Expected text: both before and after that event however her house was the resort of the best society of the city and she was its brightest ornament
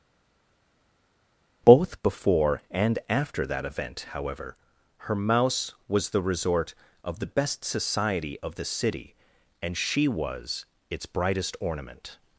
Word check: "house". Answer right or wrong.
wrong